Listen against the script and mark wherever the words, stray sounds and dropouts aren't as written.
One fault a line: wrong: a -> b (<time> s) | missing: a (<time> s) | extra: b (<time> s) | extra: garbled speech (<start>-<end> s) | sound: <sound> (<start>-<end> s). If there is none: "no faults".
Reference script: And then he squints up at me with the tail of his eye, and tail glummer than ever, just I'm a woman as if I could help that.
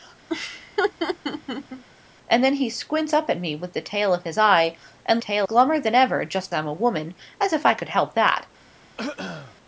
sound: laugh (0.3-1.8 s)
sound: throat clearing (9.0-9.6 s)